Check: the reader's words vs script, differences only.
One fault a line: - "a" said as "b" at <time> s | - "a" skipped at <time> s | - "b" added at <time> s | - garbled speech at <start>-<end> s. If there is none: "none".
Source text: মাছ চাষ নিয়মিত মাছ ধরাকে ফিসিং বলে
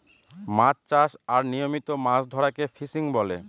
- "আর" added at 1.3 s